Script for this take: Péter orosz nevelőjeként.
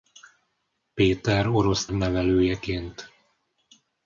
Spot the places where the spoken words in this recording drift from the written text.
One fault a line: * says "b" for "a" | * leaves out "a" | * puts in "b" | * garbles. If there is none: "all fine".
all fine